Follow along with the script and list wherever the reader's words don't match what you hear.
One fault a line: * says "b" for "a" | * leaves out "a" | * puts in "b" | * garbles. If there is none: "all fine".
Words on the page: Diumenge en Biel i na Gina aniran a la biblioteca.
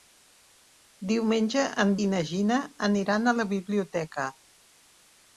* leaves out "Biel"